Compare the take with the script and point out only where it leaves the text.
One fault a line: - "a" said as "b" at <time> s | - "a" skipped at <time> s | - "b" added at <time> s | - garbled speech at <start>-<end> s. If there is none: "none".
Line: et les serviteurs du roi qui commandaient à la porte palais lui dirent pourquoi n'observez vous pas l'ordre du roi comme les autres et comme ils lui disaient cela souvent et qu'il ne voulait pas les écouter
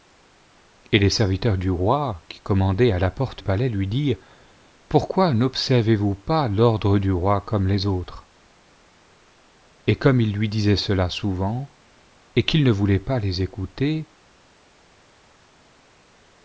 none